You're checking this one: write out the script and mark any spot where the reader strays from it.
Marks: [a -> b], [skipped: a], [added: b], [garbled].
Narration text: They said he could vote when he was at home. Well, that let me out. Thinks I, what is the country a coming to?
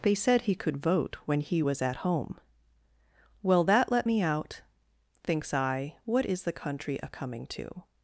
They said he could vote when he was at home. Well, that let me out. Thinks I, what is the country a coming to?